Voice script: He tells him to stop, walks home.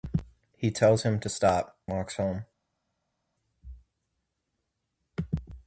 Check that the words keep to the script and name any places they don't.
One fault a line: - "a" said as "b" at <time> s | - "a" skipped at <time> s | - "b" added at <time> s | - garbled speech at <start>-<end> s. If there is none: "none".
none